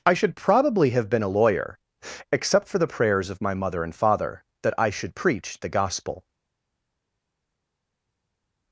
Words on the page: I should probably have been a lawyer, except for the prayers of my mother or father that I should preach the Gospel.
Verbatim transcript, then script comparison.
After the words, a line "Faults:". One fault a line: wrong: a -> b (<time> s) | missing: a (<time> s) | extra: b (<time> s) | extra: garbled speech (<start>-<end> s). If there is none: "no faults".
I should probably have been a lawyer, except for the prayers of my mother and father that I should preach the Gospel.
Faults:
wrong: or -> and (3.8 s)